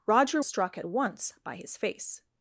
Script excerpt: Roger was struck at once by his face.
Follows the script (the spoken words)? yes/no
no